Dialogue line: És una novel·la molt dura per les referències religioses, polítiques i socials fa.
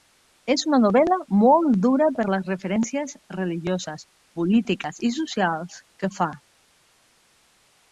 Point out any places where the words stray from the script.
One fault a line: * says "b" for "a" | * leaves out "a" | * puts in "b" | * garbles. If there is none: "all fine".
* puts in "que"